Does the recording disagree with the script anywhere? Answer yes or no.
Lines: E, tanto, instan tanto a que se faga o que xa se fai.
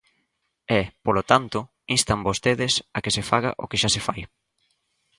yes